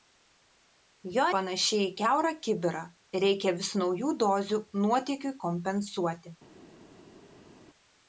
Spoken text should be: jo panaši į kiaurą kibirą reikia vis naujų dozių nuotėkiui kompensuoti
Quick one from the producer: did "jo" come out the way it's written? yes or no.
yes